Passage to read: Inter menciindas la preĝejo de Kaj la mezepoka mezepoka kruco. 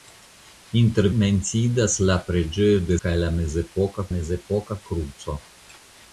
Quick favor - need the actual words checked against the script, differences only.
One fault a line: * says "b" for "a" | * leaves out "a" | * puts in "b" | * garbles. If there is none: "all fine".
all fine